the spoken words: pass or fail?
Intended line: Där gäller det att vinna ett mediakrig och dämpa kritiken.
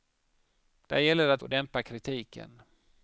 fail